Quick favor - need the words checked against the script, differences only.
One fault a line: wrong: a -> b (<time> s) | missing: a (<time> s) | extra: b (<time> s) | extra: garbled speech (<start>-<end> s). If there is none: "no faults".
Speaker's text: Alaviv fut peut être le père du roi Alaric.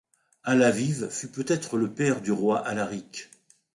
no faults